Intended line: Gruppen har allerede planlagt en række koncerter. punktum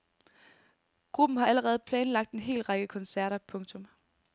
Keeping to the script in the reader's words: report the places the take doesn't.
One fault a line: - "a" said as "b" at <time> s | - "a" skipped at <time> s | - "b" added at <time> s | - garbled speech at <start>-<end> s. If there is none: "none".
- "hel" added at 2.4 s